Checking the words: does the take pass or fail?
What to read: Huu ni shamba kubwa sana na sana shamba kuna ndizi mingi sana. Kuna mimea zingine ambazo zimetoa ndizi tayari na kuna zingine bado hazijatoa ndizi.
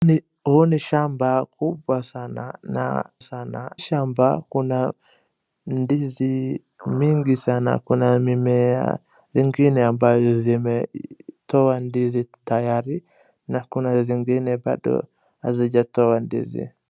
pass